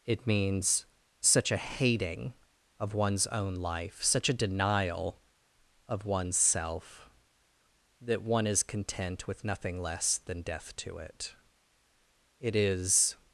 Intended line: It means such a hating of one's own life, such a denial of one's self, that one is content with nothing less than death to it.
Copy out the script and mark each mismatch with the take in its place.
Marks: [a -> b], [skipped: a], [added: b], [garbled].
It means such a hating of one's own life, such a denial of one's self, that one is content with nothing less than death to it. [added: It is]